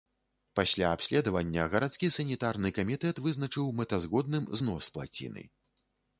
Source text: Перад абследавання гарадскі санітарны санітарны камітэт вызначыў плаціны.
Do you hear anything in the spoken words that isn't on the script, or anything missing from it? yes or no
yes